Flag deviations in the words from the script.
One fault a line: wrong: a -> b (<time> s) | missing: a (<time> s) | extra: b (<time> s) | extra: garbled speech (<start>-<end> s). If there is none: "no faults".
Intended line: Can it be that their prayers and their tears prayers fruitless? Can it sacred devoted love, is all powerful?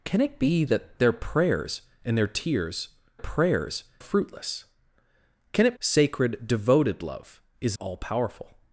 no faults